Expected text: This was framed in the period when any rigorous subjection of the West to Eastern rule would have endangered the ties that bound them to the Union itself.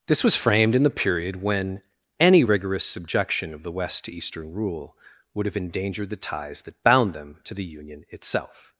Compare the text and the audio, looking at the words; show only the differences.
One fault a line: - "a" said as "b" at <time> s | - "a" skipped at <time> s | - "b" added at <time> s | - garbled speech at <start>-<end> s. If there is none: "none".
none